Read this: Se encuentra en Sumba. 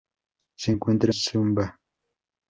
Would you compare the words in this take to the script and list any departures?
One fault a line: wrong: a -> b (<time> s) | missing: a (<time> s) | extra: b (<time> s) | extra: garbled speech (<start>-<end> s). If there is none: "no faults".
missing: en (1.1 s)